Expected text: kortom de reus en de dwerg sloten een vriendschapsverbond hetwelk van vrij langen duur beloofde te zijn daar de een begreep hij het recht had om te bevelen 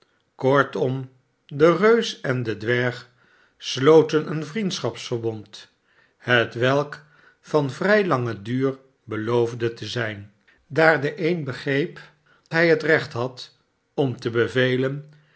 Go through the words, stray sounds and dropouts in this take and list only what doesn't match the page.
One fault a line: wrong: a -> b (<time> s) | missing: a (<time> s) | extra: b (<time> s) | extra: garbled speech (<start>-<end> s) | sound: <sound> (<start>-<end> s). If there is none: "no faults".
no faults